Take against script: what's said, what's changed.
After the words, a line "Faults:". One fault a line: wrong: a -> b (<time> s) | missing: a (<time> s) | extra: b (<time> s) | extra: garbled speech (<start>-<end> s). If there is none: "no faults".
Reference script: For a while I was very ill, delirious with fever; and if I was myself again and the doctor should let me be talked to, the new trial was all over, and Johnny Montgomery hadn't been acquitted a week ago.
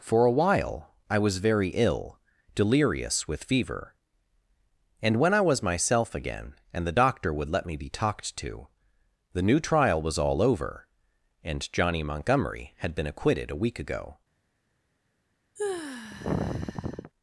For a while I was very ill, delirious with fever; and when I was myself again and the doctor would let me be talked to, the new trial was all over, and Johnny Montgomery had been acquitted a week ago.
Faults:
wrong: if -> when (5.2 s)
wrong: should -> would (7.3 s)
wrong: hadn't -> had (12.8 s)